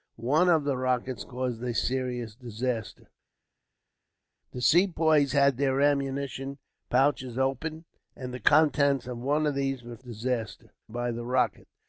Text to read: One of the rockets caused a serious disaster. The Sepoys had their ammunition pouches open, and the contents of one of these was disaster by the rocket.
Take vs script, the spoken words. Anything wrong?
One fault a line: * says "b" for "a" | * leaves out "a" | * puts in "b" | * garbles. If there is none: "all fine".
all fine